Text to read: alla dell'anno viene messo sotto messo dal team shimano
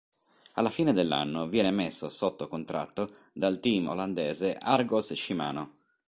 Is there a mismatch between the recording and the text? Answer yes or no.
yes